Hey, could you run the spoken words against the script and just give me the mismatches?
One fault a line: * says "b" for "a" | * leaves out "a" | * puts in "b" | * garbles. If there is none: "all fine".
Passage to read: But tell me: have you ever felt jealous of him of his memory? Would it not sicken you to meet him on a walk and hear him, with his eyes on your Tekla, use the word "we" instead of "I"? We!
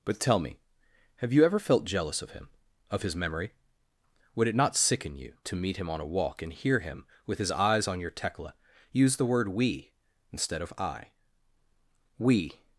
all fine